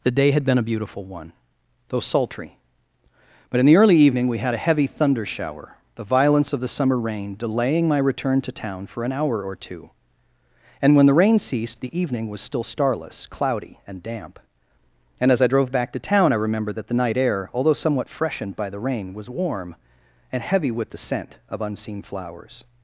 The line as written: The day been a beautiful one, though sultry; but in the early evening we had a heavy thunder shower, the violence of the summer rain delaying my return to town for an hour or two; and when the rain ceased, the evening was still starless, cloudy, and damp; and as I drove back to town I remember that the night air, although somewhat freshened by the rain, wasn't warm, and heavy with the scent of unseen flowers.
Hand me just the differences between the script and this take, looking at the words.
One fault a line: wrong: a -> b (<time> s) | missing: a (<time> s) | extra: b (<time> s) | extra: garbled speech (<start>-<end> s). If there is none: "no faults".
extra: had (0.3 s)
wrong: wasn't -> was (19.1 s)